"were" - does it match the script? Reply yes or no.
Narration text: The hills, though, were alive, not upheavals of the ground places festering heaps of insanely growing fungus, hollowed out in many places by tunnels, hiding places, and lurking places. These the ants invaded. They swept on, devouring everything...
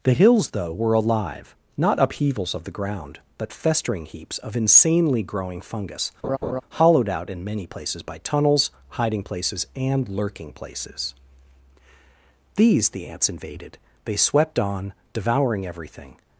yes